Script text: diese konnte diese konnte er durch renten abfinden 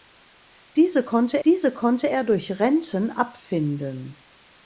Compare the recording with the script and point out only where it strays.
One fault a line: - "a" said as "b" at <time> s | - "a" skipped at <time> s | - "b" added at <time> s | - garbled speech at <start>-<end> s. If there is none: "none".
none